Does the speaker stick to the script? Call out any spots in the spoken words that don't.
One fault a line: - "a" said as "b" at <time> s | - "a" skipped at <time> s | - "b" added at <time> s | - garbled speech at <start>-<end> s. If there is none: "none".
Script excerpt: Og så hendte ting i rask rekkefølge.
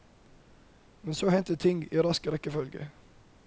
- "Og" said as "Men" at 1.0 s